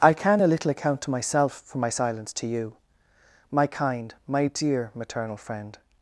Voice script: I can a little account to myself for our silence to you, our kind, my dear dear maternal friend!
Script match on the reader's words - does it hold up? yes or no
no